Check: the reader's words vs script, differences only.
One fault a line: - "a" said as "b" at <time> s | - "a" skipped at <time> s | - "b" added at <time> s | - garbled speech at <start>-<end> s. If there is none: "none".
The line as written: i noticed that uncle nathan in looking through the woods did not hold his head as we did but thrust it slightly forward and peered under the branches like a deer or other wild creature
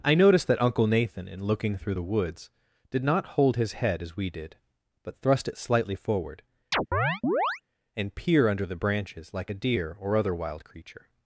- "peered" said as "peer" at 8.1 s